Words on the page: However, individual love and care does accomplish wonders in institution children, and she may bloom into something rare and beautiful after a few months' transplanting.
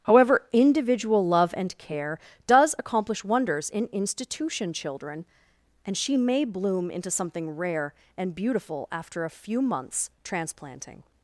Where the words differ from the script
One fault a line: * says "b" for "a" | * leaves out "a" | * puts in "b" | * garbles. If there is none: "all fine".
all fine